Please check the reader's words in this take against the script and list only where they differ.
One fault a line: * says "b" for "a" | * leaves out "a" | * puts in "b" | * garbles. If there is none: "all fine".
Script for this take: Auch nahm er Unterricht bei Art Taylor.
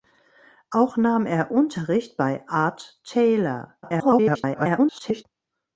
* garbles